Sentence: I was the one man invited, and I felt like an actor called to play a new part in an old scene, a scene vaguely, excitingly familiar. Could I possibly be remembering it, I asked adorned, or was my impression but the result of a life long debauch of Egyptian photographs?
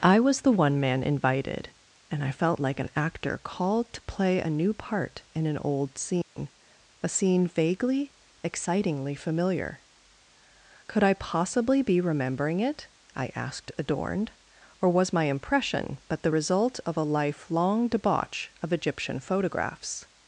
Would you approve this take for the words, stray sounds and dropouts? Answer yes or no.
no